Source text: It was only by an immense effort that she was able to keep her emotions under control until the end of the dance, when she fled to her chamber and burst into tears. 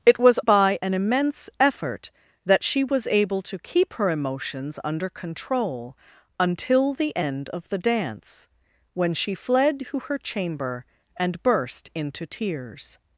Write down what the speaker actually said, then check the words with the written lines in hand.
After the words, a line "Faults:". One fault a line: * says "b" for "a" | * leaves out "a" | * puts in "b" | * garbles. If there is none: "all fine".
It was by an immense effort that she was able to keep her emotions under control until the end of the dance, when she fled to her chamber and burst into tears.
Faults:
* leaves out "only"